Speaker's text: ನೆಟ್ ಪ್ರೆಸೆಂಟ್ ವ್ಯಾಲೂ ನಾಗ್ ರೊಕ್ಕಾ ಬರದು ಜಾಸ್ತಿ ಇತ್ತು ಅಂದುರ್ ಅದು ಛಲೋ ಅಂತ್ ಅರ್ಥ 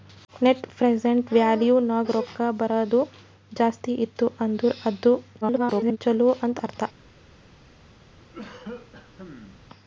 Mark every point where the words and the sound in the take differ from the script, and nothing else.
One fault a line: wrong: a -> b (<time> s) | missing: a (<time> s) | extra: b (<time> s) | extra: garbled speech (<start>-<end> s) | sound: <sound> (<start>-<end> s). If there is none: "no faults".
extra: garbled speech (5.4-6.0 s)
sound: cough (8.2-9.6 s)